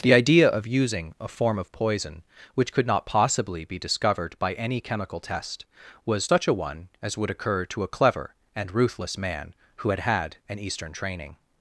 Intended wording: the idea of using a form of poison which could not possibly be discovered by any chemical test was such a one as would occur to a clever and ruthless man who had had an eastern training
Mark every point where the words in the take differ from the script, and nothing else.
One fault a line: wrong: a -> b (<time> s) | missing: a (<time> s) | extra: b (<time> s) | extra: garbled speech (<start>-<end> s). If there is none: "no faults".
no faults